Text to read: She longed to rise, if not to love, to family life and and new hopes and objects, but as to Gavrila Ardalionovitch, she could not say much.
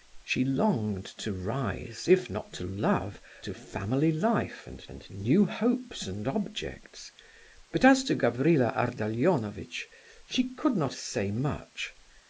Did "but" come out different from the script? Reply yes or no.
no